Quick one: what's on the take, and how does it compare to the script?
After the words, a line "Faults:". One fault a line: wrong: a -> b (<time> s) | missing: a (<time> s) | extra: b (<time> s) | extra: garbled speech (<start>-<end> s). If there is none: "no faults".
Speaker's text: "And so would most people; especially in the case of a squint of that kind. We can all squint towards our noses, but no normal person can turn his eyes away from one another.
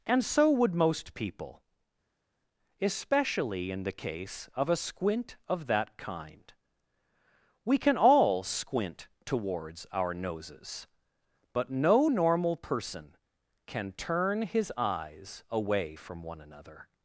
"And so would most people; especially in the case of a squint of that kind. We can all squint towards our noses, but no normal person can turn his eyes away from one another.
Faults:
no faults